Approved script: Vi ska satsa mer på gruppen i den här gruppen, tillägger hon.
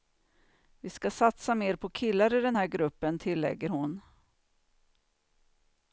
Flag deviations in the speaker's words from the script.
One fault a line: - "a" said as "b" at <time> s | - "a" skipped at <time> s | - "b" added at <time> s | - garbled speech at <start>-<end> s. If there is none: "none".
- "gruppen" said as "killar" at 1.9 s